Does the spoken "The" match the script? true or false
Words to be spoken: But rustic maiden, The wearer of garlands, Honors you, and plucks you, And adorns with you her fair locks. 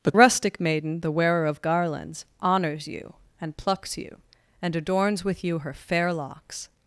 true